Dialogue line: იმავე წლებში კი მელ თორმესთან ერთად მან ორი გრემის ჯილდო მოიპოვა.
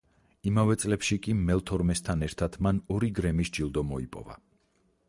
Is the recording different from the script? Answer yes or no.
no